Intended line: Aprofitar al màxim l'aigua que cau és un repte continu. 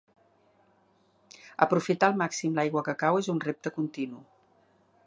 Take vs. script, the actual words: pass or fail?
pass